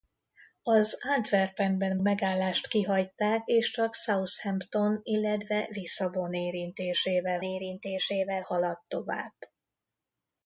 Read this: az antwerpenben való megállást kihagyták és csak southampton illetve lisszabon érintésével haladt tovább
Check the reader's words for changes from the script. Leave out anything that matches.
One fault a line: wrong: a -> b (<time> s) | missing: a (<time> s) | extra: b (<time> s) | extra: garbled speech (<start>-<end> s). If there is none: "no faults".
missing: való (2.0 s)
extra: érintésével (7.4 s)